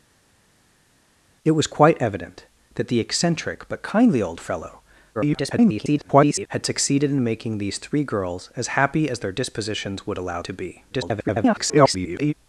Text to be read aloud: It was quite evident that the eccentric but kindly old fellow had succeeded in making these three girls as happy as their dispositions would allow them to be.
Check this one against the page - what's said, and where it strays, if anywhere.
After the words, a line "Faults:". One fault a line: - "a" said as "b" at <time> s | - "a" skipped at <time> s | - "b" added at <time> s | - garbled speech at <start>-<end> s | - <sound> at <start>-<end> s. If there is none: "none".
It was quite evident that the eccentric but kindly old fellow [garbled] had succeeded in making these three girls as happy as their dispositions would allow to be. [garbled]
Faults:
- garbled speech at 5.1-6.5 s
- "them" skipped at 10.4 s
- garbled speech at 10.9-12.3 s